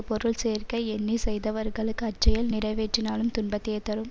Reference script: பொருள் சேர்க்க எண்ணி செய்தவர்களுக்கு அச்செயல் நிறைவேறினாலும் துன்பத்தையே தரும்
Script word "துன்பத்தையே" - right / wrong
right